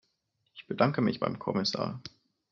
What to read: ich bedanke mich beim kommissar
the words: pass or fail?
pass